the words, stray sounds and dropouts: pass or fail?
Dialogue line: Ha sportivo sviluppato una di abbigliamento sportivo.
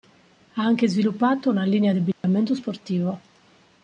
fail